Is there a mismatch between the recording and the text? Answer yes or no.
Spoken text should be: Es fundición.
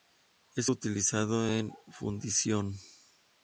yes